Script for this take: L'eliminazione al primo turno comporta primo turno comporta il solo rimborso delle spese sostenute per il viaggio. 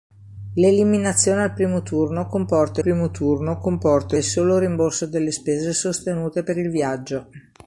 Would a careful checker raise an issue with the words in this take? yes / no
no